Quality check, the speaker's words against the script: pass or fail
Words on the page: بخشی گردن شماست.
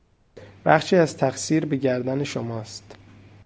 fail